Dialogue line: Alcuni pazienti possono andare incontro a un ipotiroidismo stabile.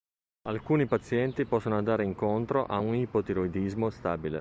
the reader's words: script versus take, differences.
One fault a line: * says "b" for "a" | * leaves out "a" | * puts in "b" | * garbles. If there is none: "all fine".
all fine